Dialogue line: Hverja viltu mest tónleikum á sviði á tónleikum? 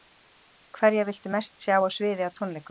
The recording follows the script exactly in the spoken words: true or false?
false